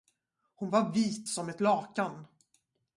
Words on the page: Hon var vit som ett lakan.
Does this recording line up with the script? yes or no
yes